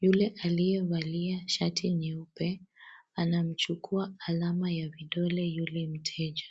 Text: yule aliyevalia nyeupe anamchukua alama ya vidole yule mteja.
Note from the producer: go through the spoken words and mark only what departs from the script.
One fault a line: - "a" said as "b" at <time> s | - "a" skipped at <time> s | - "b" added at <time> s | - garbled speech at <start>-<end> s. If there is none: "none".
- "shati" added at 1.5 s